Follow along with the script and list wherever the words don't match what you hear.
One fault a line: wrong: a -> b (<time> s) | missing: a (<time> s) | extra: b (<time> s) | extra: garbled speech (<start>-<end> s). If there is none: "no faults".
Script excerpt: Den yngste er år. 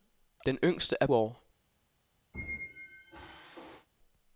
no faults